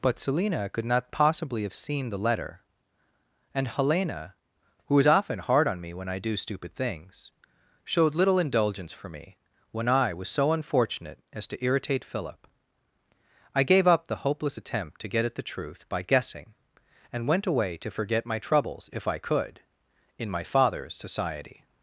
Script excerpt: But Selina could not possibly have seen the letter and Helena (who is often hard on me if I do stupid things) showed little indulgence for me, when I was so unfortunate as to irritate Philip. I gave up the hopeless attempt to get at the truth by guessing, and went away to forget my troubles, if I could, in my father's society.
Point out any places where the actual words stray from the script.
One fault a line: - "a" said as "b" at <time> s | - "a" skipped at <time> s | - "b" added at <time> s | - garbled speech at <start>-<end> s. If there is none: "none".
- "if" said as "when" at 5.9 s